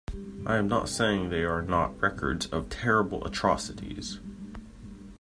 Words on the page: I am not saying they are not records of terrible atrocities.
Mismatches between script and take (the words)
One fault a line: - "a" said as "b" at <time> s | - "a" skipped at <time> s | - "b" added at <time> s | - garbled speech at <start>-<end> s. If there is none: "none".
none